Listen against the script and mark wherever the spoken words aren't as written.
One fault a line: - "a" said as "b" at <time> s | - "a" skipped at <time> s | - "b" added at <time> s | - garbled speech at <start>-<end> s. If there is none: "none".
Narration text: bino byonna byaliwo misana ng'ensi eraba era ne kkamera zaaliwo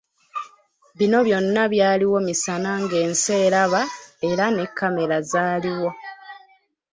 none